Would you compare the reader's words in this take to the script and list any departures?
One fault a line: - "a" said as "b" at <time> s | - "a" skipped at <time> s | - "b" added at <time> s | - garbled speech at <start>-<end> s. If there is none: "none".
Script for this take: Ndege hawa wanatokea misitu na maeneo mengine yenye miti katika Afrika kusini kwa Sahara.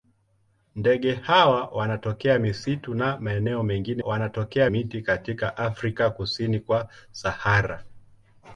- "yenye" said as "wanatokea" at 4.0 s